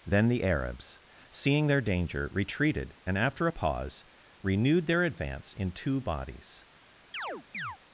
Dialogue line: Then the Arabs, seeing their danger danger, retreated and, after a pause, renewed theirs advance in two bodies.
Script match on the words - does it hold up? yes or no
no